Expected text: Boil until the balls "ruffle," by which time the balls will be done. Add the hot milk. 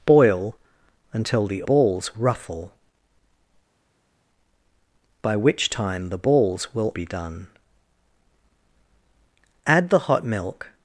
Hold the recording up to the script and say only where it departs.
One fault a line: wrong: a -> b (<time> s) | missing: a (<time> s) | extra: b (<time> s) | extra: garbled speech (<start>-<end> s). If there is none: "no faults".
no faults